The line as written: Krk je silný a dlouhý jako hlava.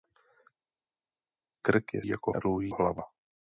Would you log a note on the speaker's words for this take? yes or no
yes